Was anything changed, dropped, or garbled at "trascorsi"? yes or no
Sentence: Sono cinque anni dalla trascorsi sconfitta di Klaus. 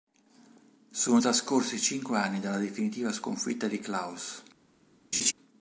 yes